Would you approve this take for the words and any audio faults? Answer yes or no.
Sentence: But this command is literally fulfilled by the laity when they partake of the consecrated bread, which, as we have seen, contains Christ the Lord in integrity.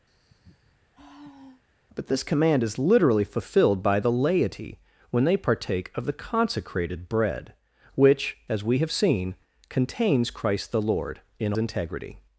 no